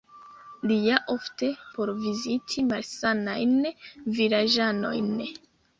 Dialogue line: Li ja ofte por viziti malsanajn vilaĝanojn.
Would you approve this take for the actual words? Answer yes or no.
yes